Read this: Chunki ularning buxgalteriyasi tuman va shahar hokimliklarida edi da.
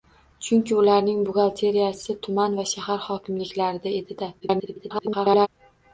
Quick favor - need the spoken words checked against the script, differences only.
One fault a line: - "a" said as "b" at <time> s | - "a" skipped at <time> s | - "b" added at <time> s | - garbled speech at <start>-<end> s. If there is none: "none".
- garbled speech at 4.4-5.5 s